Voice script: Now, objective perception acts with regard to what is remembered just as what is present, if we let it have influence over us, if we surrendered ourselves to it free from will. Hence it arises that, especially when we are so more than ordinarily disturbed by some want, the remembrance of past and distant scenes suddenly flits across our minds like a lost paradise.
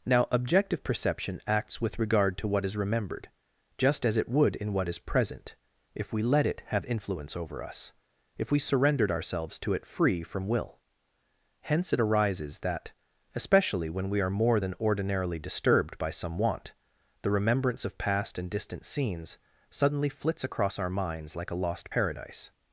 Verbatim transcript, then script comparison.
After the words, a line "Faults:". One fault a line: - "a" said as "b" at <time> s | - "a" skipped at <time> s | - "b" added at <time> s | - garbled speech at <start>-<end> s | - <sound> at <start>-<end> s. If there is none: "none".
Now, objective perception acts with regard to what is remembered just as it would in what is present, if we let it have influence over us, if we surrendered ourselves to it free from will. Hence it arises that, especially when we are more than ordinarily disturbed by some want, the remembrance of past and distant scenes suddenly flits across our minds like a lost paradise.
Faults:
- "it would in" added at 4.2 s
- "so" skipped at 14.3 s